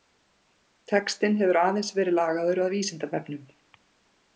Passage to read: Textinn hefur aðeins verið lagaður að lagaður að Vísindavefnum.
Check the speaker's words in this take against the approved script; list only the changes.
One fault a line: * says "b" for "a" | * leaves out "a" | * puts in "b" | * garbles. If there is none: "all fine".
* leaves out "lagaður að"